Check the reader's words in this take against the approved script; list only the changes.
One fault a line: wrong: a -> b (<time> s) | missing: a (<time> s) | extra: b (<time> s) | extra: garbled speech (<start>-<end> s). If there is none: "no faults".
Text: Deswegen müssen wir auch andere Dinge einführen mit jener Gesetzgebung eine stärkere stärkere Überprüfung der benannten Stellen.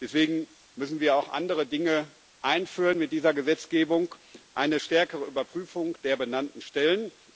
wrong: jener -> dieser (3.1 s)
missing: stärkere (5.2 s)